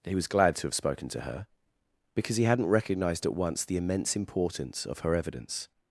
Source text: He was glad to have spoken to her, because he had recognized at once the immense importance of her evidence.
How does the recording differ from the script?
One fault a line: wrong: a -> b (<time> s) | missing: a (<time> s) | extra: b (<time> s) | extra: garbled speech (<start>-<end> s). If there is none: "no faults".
wrong: had -> hadn't (2.4 s)